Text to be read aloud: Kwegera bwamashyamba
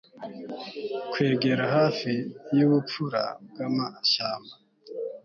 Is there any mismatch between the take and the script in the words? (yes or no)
yes